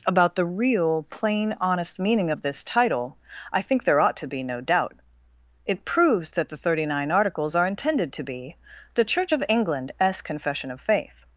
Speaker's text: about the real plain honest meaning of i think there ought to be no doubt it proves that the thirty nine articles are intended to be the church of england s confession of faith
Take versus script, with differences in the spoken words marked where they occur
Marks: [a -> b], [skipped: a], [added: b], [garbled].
about the real plain honest meaning of [added: this title] i think there ought to be no doubt it proves that the thirty nine articles are intended to be the church of england s confession of faith